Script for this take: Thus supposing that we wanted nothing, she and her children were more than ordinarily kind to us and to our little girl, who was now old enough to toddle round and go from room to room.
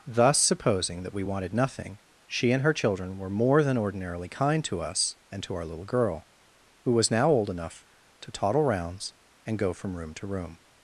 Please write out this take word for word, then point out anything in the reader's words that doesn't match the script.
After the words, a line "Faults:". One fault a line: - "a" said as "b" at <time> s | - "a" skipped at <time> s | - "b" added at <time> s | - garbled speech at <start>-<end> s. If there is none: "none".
Thus supposing that we wanted nothing, she and her children were more than ordinarily kind to us and to our little girl, who was now old enough to toddle rounds and go from room to room.
Faults:
- "round" said as "rounds" at 8.6 s